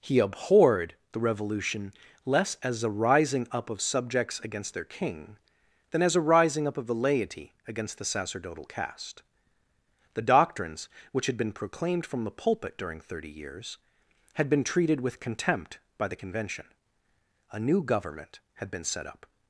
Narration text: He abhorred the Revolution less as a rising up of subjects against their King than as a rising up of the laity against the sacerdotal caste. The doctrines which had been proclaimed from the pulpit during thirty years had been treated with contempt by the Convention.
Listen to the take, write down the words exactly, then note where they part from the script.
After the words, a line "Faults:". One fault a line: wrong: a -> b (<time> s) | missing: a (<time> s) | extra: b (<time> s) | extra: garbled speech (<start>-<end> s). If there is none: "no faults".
He abhorred the Revolution less as a rising up of subjects against their King than as a rising up of the laity against the sacerdotal caste. The doctrines which had been proclaimed from the pulpit during thirty years had been treated with contempt by the Convention. A new government had been set up
Faults:
extra: A new government had been set up (17.5 s)